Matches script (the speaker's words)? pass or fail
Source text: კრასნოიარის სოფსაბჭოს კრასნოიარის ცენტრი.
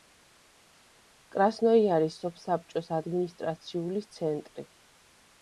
fail